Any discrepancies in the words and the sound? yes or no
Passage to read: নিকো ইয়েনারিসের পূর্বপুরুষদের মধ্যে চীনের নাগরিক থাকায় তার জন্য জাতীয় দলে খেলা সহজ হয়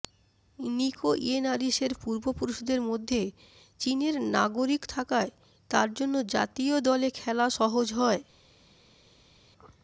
no